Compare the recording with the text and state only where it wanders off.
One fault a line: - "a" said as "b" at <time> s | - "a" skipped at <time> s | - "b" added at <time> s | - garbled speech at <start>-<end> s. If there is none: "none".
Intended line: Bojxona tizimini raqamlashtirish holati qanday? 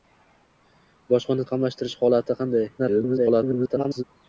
- "tizimini" skipped at 1.5 s
- garbled speech at 2.8-4.0 s